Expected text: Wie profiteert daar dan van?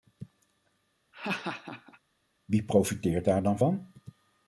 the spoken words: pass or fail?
pass